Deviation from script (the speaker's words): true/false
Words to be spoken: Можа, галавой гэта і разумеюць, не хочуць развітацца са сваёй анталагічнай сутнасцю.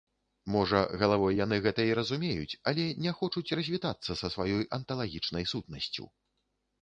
true